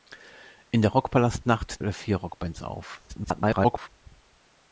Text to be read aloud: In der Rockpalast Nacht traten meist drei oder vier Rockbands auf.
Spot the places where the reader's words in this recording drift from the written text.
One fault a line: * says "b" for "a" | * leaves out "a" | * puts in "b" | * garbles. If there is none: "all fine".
* leaves out "traten meist drei"
* garbles